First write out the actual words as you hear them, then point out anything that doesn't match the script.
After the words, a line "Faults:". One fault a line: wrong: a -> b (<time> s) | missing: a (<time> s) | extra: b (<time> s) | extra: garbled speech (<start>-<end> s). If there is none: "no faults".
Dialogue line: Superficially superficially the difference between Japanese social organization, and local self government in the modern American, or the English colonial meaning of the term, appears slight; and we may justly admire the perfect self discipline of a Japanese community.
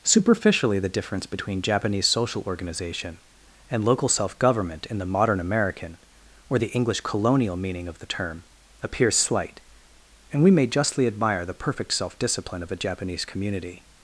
Superficially the difference between Japanese social organization, and local self government in the modern American, or the English colonial meaning of the term, appears slight; and we may justly admire the perfect self discipline of a Japanese community.
Faults:
missing: superficially (0.8 s)